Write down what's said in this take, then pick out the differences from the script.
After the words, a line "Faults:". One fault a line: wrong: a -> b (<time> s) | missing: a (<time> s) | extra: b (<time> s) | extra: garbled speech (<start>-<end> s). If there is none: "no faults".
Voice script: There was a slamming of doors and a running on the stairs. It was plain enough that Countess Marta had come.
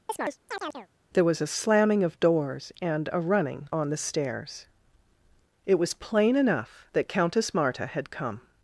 There was a slamming of doors and a running on the stairs. It was plain enough that Countess Marta had come.
Faults:
no faults